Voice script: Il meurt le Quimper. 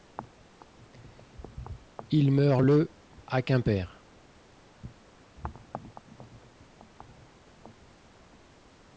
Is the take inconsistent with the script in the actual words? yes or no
yes